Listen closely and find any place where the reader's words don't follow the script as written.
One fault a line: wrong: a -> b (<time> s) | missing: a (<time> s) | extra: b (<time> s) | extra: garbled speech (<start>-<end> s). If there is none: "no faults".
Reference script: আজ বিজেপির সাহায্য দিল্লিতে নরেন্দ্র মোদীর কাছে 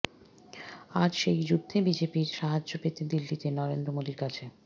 extra: সেই যুদ্ধে (1.1 s)
extra: পেতে (2.8 s)